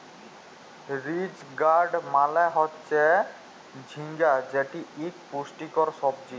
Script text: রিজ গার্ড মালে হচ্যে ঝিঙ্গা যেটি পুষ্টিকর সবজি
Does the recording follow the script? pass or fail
fail